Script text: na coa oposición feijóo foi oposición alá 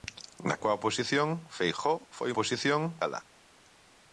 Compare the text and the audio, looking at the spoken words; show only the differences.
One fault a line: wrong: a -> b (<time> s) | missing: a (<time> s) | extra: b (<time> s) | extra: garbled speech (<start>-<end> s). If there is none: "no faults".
no faults